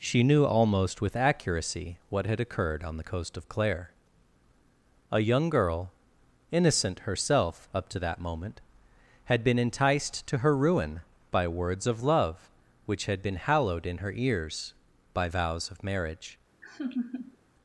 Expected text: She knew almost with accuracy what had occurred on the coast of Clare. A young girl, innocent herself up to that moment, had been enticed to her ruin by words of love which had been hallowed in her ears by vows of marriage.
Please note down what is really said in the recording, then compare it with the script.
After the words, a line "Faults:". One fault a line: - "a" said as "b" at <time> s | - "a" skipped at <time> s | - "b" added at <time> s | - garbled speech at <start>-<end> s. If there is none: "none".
She knew almost with accuracy what had occurred on the coast of Clare. A young girl, innocent herself up to that moment, had been enticed to her ruin by words of love which had been hallowed in her ears by vows of marriage.
Faults:
none